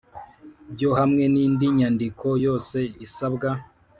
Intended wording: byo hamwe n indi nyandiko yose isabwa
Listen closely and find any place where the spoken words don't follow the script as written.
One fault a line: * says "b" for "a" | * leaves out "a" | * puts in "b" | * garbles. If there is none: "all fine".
all fine